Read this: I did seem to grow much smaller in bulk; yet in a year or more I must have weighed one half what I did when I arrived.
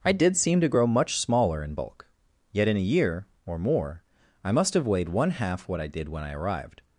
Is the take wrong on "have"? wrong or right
right